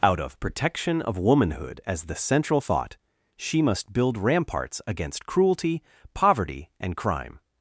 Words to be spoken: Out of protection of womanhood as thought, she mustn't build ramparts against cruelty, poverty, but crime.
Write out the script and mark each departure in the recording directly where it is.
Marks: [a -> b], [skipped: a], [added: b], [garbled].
Out of protection of womanhood as [added: the central] thought, she [mustn't -> must] build ramparts against cruelty, poverty, [but -> and] crime.